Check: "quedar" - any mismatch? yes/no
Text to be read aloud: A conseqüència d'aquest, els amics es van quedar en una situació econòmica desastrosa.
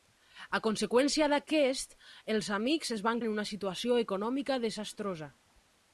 yes